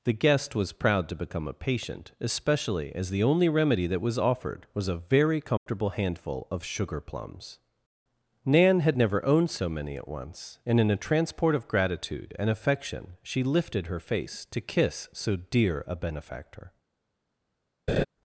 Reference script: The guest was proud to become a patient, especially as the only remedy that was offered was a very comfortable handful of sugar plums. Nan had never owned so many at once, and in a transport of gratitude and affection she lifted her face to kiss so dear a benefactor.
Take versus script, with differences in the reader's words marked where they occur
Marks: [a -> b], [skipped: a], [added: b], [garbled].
The guest was proud to become a patient, especially as the only remedy that was offered was a very comfortable handful of sugar plums. Nan had never owned so many at once, and in a transport of gratitude and affection she lifted her face to kiss so dear a benefactor.